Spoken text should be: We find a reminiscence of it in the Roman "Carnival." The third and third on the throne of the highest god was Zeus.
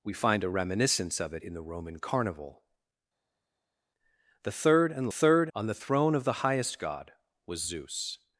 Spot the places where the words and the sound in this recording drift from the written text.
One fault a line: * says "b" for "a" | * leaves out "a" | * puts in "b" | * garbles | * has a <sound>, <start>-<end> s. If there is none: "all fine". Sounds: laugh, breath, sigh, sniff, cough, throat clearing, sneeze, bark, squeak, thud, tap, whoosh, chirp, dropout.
all fine